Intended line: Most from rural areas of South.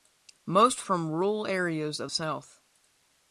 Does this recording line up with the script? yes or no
yes